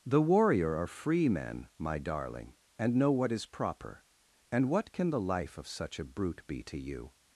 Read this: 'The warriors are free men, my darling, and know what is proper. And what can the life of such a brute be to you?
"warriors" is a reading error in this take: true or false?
true